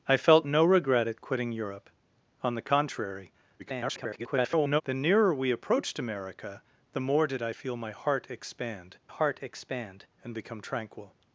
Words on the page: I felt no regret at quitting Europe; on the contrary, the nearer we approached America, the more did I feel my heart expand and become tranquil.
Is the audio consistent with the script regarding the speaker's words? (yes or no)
no